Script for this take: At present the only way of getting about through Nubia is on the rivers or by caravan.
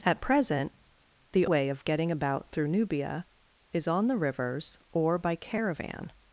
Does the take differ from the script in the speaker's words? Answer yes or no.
yes